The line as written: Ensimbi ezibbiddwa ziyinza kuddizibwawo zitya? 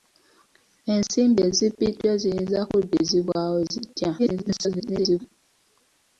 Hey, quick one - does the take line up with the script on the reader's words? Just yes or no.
no